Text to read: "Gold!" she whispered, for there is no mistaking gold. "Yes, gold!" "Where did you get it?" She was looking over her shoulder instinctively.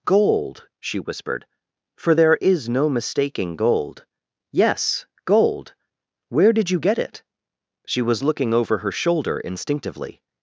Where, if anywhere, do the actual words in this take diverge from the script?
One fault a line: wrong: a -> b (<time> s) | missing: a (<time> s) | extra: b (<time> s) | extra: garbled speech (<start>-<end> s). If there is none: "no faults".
no faults